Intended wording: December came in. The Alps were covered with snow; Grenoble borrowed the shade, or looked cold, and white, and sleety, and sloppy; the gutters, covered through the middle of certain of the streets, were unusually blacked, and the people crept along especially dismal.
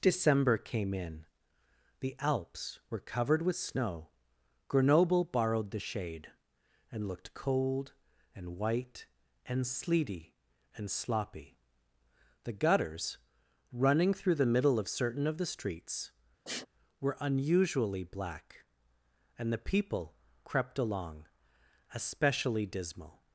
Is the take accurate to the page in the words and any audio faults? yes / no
no